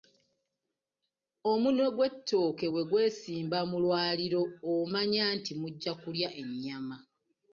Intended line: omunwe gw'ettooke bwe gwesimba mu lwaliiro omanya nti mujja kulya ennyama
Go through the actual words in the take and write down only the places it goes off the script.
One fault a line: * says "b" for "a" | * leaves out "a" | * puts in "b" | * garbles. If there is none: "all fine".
all fine